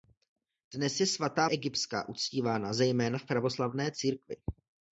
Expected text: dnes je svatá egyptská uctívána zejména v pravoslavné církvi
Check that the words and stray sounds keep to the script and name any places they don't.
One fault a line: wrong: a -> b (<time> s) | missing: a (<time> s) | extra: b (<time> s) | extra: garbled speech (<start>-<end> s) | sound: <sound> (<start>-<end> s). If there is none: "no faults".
no faults